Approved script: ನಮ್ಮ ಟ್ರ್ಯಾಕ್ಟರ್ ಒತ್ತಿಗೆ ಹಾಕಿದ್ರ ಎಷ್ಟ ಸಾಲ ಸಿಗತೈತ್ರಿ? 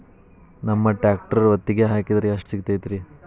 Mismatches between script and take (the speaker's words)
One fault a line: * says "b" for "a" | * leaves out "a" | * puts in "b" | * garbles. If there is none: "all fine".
* leaves out "ಸಾಲ"